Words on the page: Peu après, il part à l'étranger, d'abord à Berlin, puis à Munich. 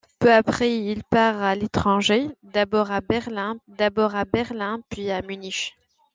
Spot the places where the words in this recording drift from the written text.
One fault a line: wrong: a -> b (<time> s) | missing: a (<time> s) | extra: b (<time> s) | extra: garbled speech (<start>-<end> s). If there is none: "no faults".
extra: d'abord à Berlin (3.7 s)